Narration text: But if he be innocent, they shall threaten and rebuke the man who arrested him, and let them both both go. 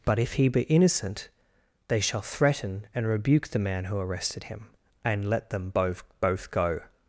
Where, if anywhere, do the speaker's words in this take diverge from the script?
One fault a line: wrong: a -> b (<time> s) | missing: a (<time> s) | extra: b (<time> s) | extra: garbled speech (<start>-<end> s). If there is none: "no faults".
no faults